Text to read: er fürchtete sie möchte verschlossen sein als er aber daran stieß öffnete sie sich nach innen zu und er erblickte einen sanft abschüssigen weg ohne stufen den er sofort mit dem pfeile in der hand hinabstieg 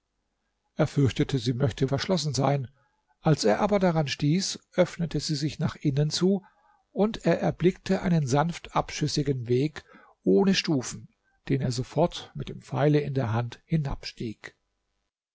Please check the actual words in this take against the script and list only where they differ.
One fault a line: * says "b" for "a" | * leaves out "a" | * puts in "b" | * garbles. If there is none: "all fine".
all fine